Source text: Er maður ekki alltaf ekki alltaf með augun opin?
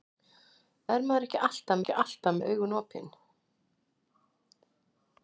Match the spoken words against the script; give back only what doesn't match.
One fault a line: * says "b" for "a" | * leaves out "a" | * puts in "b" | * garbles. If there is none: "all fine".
all fine